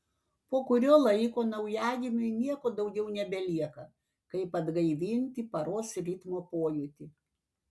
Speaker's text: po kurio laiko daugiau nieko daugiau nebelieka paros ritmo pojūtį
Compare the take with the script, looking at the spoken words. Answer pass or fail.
fail